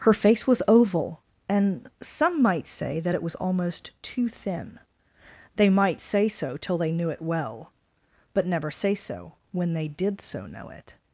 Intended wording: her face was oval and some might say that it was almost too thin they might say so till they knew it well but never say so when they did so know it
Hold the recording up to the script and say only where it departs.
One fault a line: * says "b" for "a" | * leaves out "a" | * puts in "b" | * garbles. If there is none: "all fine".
all fine